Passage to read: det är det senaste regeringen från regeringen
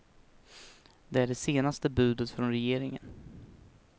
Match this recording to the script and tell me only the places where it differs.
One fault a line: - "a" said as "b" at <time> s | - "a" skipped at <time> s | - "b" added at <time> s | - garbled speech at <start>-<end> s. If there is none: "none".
- "regeringen" said as "budet" at 1.9 s